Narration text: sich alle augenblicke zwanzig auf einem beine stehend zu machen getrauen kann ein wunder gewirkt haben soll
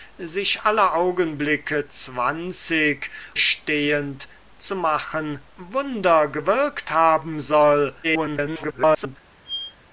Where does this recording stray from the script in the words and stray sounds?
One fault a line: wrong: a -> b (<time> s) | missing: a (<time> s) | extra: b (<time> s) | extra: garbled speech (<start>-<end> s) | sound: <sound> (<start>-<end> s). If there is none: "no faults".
missing: auf einem beine (3.1 s)
missing: getrauen kann ein (5.4 s)
extra: garbled speech (8.0-9.2 s)
sound: squeak (9.5-9.8 s)